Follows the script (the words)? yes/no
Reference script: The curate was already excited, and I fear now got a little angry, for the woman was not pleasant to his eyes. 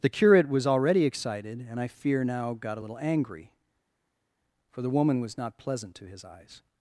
yes